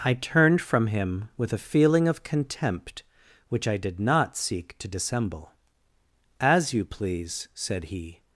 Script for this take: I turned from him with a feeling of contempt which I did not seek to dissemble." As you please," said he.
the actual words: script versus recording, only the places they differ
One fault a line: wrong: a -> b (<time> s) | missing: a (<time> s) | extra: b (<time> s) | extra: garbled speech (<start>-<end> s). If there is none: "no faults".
no faults